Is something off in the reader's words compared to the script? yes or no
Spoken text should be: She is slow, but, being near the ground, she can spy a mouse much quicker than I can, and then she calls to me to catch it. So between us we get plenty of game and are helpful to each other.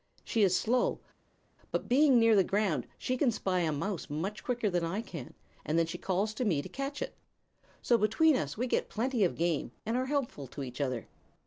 no